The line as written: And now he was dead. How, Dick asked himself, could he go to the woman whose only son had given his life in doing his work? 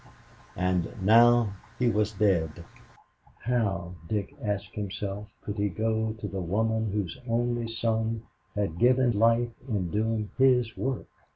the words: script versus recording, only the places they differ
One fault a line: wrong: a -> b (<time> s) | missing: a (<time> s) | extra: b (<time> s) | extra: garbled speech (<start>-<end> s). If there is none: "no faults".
missing: his (9.2 s)